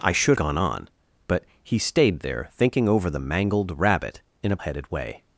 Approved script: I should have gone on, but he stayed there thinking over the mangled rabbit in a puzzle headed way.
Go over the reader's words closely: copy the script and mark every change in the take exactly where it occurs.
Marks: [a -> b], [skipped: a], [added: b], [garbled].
I should [skipped: have] gone on, but he stayed there thinking over the mangled rabbit in a [skipped: puzzle] headed way.